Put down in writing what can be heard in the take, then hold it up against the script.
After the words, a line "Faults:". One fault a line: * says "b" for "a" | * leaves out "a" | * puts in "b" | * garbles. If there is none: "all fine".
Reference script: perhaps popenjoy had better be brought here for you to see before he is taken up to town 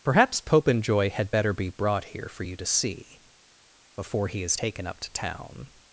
perhaps popenjoy had better be brought here for you to see before he is taken up to town
Faults:
all fine